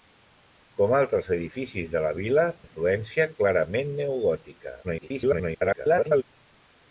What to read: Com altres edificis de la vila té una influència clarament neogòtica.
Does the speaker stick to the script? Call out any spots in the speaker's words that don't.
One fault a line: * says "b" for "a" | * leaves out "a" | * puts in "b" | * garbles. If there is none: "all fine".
* leaves out "té una"
* garbles